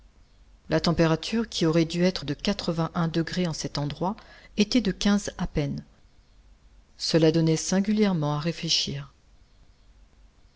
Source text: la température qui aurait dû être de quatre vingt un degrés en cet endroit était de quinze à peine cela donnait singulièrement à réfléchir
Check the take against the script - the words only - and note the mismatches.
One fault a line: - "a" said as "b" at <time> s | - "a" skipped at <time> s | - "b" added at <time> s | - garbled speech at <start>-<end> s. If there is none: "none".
none